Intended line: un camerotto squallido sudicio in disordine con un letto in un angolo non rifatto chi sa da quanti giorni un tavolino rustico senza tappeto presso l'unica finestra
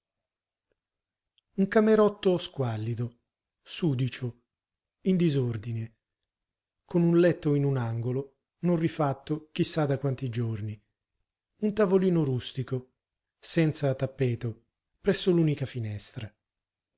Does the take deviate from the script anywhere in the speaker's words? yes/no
no